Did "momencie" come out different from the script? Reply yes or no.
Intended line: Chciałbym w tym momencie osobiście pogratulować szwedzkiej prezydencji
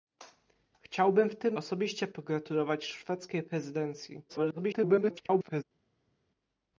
yes